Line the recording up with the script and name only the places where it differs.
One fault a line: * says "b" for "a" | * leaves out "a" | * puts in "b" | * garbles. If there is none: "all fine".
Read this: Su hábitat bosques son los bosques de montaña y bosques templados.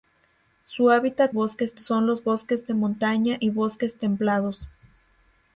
all fine